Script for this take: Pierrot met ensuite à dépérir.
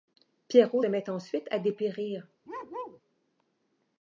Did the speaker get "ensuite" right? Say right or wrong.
right